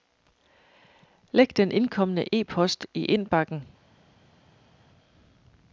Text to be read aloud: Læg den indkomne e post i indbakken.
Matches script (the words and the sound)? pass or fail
pass